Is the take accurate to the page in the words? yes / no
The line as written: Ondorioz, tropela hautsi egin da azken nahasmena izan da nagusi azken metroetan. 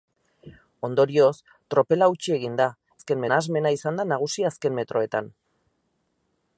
yes